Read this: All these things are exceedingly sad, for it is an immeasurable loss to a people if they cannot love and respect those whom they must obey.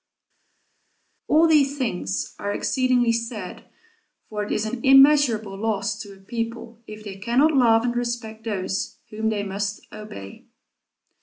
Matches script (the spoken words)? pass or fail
pass